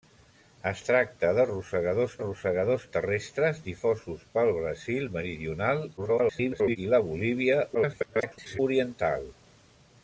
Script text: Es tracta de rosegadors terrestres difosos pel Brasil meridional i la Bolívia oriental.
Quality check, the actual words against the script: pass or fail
fail